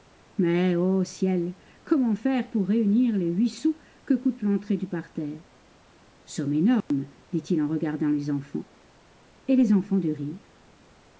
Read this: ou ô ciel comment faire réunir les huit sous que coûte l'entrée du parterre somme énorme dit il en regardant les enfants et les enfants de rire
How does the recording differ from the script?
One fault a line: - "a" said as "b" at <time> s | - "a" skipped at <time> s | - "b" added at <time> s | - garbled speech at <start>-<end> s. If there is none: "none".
- "ou" said as "mais" at 0.4 s
- "pour" added at 2.5 s